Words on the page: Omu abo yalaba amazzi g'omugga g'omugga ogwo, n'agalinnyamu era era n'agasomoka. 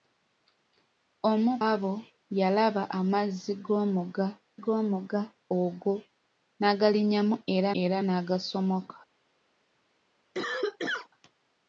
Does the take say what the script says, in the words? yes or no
yes